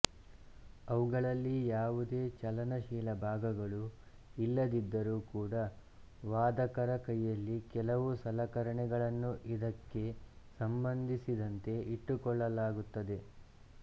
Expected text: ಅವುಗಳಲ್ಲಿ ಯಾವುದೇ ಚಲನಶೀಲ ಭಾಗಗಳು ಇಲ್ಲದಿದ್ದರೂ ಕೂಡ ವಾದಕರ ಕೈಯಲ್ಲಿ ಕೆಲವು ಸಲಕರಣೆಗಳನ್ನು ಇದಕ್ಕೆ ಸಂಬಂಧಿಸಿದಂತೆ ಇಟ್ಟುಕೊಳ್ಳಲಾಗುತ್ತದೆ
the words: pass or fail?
pass